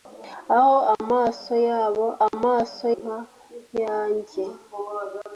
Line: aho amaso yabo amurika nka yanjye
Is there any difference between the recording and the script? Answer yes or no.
yes